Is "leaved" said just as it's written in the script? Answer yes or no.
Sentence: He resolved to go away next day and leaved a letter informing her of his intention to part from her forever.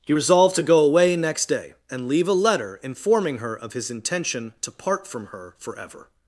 no